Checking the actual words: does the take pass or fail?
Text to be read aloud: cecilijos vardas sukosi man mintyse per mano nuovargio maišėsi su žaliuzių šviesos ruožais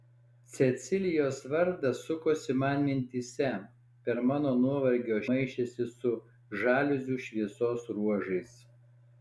pass